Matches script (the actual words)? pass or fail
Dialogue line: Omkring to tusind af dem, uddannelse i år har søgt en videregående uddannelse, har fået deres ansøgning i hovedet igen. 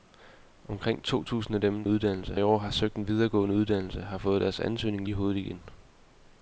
pass